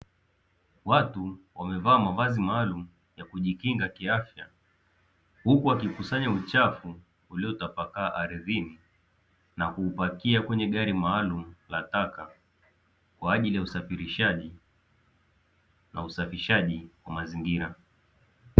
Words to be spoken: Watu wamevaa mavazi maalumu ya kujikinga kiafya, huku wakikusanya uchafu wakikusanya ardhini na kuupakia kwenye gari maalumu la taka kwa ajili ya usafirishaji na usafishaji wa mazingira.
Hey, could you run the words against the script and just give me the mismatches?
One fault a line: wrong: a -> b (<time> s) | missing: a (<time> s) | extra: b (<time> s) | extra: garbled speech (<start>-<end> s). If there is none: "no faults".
wrong: wakikusanya -> uliotapakaa (7.3 s)